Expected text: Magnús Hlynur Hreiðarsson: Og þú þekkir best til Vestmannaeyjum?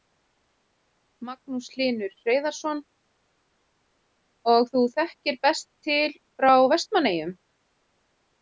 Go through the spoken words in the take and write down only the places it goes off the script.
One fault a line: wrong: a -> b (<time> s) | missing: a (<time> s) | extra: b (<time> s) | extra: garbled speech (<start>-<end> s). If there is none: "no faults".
extra: frá (6.4 s)